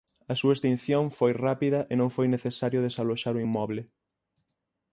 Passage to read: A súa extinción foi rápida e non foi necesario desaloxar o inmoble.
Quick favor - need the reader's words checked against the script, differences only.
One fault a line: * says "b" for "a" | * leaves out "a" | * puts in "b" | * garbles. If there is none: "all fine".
all fine